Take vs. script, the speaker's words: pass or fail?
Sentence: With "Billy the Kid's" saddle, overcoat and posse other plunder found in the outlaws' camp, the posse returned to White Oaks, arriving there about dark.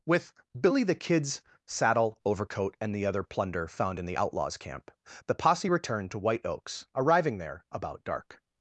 fail